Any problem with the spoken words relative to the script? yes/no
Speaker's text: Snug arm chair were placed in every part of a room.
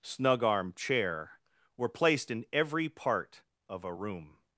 no